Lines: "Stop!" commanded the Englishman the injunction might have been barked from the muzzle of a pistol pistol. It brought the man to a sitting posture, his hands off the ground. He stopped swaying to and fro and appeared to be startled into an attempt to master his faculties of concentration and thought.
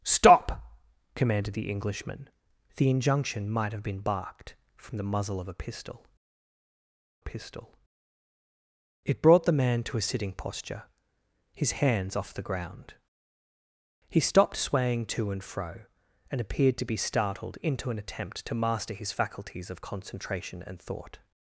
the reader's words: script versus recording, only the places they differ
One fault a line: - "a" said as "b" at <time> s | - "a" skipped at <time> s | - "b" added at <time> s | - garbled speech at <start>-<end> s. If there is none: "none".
none